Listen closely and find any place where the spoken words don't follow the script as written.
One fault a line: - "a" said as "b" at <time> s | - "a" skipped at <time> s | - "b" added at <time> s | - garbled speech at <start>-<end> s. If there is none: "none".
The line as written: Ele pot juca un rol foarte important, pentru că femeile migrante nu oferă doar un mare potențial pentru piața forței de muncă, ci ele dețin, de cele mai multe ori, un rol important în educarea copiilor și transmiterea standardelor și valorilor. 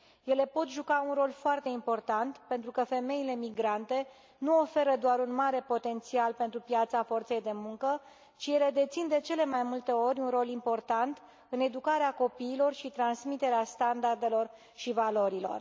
none